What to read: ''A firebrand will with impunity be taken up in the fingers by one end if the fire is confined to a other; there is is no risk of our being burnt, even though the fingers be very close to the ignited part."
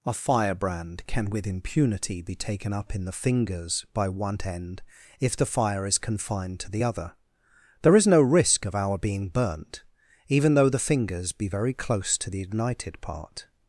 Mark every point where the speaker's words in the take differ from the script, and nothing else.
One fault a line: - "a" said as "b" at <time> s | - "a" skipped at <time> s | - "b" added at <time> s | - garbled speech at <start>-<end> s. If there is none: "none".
- "will" said as "can" at 1.1 s
- "a" said as "the" at 6.7 s
- "is" skipped at 8.1 s